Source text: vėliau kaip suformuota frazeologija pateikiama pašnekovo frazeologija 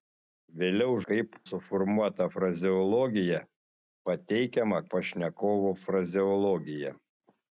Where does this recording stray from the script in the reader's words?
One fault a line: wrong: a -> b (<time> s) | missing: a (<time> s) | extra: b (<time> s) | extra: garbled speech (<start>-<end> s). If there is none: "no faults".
no faults